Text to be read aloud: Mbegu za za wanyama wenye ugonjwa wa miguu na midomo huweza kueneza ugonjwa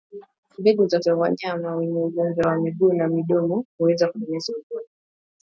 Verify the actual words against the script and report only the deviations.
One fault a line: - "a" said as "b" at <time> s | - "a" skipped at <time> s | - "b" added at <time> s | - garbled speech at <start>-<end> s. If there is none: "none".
none